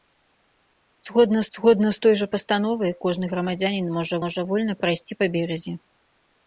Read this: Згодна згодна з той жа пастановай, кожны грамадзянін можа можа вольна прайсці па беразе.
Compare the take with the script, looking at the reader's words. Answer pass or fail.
pass